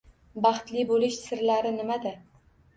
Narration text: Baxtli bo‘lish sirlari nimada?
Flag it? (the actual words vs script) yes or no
no